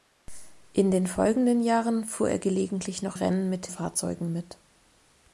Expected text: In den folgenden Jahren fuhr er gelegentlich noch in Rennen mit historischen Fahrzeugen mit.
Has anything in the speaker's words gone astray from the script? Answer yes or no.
yes